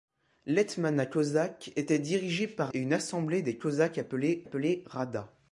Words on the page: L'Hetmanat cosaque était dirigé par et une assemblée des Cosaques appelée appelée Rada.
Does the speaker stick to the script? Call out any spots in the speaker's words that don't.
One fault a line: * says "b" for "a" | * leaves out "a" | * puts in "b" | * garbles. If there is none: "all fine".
all fine